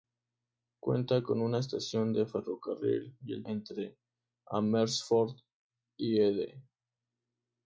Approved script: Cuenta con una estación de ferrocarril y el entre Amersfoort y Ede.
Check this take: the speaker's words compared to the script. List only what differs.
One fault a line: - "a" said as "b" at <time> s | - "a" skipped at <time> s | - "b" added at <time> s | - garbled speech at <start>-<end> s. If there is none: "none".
none